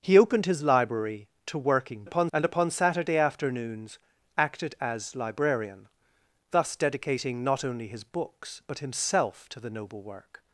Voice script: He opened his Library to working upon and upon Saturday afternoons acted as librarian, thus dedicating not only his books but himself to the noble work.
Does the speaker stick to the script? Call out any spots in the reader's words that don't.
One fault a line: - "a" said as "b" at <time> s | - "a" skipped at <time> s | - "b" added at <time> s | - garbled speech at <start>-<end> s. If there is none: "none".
none